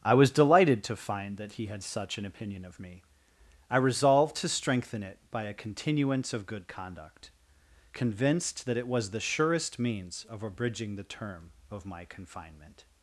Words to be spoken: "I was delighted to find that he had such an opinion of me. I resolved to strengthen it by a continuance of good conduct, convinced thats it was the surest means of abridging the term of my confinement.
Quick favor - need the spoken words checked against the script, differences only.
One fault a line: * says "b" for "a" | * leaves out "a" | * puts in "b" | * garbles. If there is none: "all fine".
* says "that" for "thats"